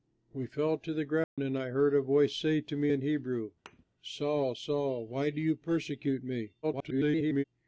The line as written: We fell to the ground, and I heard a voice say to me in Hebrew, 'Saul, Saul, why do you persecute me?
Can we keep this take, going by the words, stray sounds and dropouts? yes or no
no